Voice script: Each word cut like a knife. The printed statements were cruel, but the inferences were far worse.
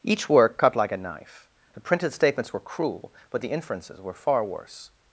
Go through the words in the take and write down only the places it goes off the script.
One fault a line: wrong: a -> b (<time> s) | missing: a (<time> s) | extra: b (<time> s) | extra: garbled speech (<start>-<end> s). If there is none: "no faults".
wrong: word -> work (0.3 s)